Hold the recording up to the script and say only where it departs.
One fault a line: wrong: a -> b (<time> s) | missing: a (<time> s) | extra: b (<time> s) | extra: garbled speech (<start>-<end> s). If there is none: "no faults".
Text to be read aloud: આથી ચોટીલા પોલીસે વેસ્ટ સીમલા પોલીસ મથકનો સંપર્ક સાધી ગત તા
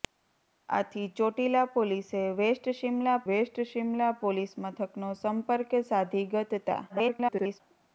extra: વેસ્ટ સીમલા (3.3 s)
extra: garbled speech (6.9-7.6 s)